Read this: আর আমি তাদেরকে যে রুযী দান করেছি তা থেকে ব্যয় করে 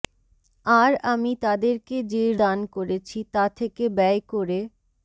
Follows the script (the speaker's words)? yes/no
no